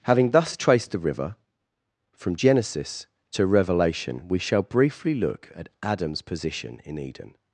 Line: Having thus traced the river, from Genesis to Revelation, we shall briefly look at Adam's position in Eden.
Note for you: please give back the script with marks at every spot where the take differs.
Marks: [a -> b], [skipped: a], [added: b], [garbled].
Having thus traced the river, from Genesis to Revelation, we shall briefly look at Adam's position in Eden.